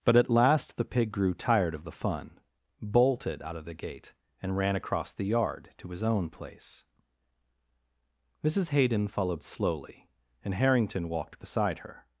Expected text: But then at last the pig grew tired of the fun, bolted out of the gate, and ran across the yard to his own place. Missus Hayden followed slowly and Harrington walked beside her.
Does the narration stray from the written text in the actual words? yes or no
yes